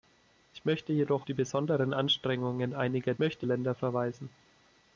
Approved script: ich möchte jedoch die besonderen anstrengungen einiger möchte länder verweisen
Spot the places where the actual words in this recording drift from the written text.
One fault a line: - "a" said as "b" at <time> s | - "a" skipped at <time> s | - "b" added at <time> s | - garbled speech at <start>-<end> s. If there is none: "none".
none